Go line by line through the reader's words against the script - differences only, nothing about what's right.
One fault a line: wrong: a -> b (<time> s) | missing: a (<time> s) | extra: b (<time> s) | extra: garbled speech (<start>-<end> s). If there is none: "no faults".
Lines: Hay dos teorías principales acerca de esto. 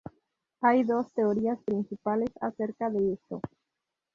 no faults